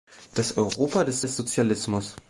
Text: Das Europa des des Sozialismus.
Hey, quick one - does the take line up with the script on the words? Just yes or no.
yes